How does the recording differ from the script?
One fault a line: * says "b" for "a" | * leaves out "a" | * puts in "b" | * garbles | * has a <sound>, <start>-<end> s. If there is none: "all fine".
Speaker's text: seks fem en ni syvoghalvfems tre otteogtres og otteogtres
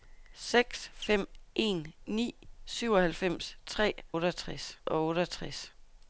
all fine